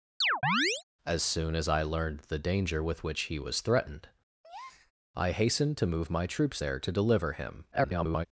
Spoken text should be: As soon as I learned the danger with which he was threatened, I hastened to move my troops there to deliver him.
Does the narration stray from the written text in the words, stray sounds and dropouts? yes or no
yes